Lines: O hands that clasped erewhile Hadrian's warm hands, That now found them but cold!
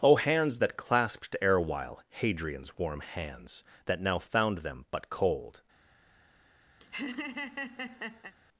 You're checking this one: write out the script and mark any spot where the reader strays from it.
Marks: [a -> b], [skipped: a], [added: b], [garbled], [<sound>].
O hands that clasped erewhile Hadrian's warm hands, That now found them but cold! [laugh]